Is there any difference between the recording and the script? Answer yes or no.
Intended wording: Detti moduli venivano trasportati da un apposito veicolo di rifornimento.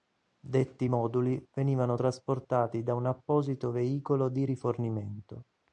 no